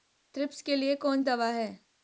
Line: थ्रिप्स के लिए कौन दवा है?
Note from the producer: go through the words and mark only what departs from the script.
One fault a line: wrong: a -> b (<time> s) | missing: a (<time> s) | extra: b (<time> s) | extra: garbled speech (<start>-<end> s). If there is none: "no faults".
no faults